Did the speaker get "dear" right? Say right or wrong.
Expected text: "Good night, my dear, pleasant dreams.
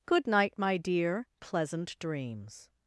right